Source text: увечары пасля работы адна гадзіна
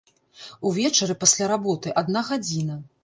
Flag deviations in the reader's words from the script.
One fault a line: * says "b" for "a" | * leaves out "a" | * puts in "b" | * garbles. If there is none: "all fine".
all fine